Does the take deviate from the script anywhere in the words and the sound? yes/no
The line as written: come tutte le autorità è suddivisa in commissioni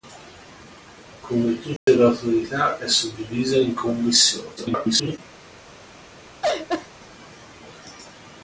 yes